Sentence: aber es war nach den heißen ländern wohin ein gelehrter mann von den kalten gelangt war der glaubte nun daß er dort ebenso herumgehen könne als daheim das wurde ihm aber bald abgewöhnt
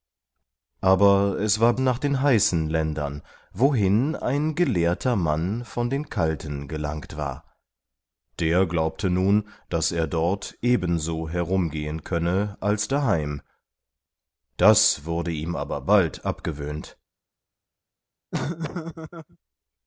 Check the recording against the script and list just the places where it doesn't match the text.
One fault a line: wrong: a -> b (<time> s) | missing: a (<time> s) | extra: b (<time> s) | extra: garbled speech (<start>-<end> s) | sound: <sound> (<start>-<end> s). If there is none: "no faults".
sound: laugh (18.3-19.4 s)